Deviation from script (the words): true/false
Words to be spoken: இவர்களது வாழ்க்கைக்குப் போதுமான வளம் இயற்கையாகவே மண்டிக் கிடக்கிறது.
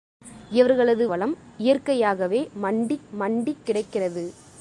true